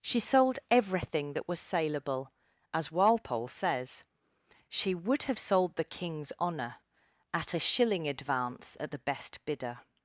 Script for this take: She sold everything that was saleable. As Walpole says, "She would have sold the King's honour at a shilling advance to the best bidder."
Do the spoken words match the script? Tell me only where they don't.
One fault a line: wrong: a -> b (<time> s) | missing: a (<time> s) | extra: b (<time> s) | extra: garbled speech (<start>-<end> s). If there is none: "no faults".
wrong: to -> at (8.8 s)